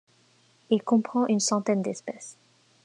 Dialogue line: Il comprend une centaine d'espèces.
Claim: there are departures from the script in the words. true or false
false